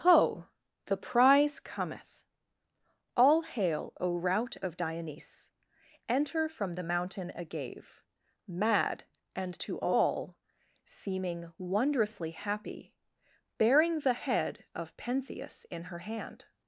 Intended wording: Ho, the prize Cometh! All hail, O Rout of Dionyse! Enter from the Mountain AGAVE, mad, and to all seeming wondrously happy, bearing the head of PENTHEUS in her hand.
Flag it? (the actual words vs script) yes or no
no